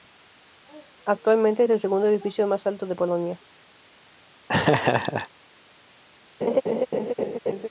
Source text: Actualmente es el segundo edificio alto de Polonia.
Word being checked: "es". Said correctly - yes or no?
yes